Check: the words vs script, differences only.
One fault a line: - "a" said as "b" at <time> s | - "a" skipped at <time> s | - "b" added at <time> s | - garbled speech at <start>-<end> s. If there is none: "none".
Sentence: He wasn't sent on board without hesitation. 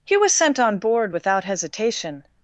- "wasn't" said as "was" at 0.2 s